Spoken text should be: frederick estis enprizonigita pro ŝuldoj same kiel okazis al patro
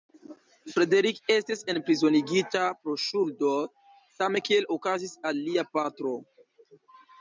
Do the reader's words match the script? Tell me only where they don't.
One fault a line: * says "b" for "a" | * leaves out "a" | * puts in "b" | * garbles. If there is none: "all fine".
* puts in "lia"